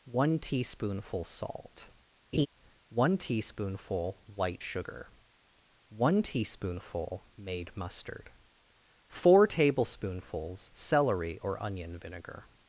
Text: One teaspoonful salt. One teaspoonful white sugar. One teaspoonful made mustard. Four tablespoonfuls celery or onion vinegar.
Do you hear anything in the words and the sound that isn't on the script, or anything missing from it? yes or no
yes